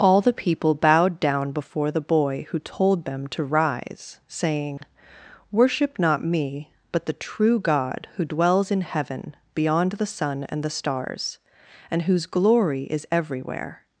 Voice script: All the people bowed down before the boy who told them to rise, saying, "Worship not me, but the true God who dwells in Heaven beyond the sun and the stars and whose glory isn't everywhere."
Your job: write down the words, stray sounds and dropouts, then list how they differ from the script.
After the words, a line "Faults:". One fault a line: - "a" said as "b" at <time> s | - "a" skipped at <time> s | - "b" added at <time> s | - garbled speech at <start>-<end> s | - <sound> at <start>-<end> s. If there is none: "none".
All the people bowed down before the boy who told them to rise, saying, "Worship not me, but the true God who dwells in Heaven beyond the sun and the stars and whose glory is everywhere."
Faults:
- dropout at 4.8-4.8 s
- "isn't" said as "is" at 12.8 s